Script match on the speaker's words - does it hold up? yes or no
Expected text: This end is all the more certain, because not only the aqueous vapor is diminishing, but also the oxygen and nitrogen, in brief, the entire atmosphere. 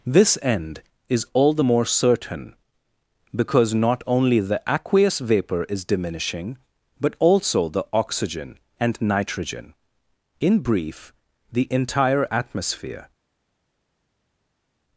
yes